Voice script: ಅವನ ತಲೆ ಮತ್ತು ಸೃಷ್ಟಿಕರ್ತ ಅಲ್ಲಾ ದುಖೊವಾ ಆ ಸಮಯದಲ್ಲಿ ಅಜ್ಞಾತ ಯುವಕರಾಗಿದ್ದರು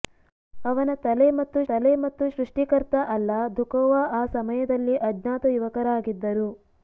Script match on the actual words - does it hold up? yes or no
no